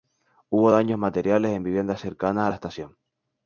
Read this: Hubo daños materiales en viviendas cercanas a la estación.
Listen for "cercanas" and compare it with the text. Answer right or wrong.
right